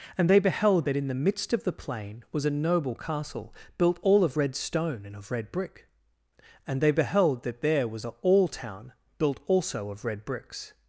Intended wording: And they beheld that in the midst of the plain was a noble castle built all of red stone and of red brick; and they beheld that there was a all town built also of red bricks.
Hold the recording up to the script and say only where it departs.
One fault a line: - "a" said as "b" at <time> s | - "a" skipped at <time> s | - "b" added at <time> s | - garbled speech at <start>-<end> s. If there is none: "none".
none